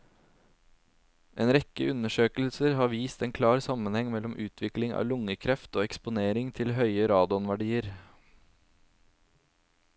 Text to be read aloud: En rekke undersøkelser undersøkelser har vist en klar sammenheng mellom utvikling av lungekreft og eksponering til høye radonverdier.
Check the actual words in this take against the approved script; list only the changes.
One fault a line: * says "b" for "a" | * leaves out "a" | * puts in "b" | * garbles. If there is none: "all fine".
* leaves out "undersøkelser"